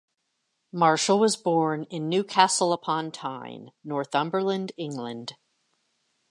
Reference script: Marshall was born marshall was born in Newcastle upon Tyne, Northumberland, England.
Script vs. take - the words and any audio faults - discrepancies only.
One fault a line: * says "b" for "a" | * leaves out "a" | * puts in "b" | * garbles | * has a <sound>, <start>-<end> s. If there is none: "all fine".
* leaves out "marshall was born"